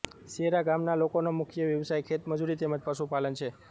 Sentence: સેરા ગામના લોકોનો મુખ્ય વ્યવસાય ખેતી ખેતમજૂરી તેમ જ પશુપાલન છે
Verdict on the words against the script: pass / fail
fail